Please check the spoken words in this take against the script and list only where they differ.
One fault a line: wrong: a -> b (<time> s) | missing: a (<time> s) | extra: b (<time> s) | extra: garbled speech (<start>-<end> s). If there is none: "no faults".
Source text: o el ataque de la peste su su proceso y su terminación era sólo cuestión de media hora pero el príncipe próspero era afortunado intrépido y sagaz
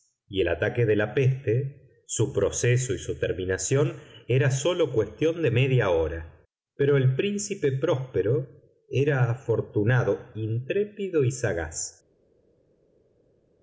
wrong: o -> y (0.3 s)
missing: su (2.3 s)